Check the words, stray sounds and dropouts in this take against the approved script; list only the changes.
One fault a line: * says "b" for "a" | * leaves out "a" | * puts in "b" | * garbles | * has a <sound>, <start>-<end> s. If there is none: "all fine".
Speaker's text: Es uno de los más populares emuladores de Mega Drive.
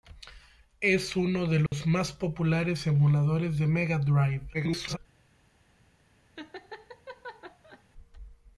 * has a dropout, 1.7-1.7 s
* garbles
* has a laugh, 6.4-7.8 s